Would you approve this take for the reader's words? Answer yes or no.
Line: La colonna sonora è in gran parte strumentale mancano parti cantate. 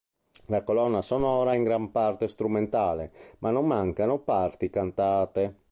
no